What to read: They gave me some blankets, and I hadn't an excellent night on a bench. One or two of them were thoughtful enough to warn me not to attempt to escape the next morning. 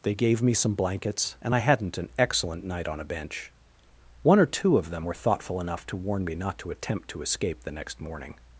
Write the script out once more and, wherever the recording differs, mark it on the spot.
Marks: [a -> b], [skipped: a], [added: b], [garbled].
They gave me some blankets, and I hadn't an excellent night on a bench. One or two of them were thoughtful enough to warn me not to attempt to escape the next morning.